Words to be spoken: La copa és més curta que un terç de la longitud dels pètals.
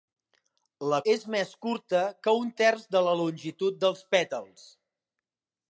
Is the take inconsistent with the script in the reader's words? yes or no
yes